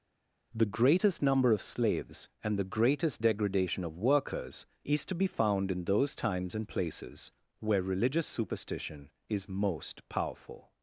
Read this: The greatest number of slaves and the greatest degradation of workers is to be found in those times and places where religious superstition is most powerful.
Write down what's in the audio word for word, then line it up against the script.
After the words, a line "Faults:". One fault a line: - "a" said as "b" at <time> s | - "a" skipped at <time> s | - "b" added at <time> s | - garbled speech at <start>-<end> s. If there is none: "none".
The greatest number of slaves and the greatest degradation of workers is to be found in those times and places where religious superstition is most powerful.
Faults:
none